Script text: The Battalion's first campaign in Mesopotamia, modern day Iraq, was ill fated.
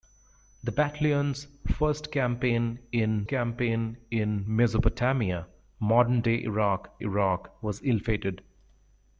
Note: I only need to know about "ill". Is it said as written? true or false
true